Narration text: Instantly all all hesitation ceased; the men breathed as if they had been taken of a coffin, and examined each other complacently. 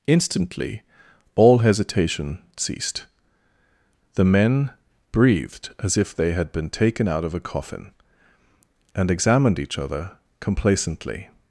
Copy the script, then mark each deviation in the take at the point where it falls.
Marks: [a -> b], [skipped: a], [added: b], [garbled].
Instantly all [skipped: all] hesitation ceased; the men breathed as if they had been taken [added: out] of a coffin, and examined each other complacently.